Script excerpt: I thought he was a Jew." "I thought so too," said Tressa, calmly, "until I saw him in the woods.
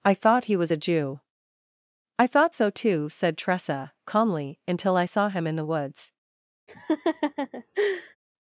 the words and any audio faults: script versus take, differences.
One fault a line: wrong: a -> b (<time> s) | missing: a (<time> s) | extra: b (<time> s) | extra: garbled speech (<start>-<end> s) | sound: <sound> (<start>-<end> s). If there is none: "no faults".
sound: laugh (6.7-8.2 s)